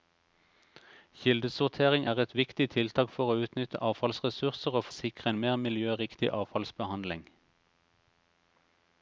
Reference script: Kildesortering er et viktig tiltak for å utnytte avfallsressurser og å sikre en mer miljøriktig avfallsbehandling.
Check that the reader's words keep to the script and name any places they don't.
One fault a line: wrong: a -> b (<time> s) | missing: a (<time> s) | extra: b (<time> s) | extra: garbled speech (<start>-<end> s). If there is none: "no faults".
no faults